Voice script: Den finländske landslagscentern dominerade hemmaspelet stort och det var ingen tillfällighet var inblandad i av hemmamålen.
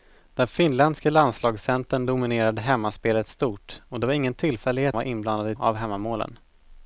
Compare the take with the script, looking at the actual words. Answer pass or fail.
pass